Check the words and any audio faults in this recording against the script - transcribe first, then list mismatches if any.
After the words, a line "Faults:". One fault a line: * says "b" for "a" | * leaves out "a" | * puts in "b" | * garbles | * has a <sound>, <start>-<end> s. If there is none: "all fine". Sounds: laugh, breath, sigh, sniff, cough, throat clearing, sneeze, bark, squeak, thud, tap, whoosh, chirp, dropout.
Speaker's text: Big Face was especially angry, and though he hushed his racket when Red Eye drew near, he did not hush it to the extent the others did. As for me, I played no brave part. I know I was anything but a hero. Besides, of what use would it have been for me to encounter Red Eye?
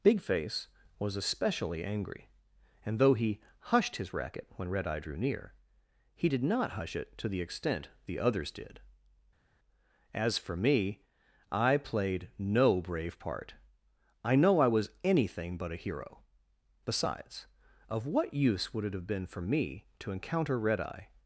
Big Face was especially angry, and though he hushed his racket when Red Eye drew near, he did not hush it to the extent the others did. As for me, I played no brave part. I know I was anything but a hero. Besides, of what use would it have been for me to encounter Red Eye?
Faults:
all fine